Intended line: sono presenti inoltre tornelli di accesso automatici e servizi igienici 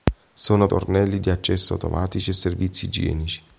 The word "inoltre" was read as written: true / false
false